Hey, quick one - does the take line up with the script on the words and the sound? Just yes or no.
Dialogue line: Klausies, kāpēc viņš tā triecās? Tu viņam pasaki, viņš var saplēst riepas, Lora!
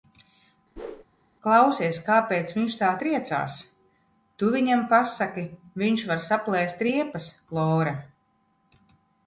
no